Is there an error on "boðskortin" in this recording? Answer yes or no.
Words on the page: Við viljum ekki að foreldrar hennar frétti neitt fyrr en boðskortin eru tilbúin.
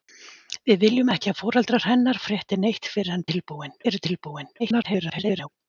yes